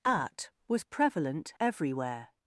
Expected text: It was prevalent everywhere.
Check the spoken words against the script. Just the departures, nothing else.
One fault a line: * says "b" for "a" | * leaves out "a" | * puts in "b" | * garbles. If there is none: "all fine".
* says "At" for "It"